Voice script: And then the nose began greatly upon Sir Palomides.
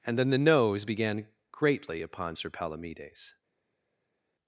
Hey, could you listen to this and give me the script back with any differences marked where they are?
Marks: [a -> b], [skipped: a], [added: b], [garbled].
And then the nose began greatly upon Sir Palomides.